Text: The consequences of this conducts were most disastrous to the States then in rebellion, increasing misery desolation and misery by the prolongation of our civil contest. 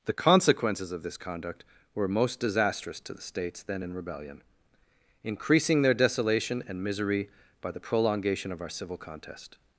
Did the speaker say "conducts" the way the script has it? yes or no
no